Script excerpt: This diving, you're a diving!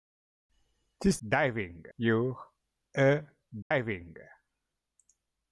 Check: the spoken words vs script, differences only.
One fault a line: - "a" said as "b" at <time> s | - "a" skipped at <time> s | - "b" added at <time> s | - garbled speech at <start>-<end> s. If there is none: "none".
none